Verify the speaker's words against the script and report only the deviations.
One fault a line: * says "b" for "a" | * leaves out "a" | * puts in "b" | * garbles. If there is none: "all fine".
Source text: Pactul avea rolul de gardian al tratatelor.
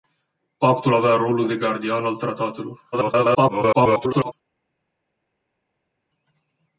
* garbles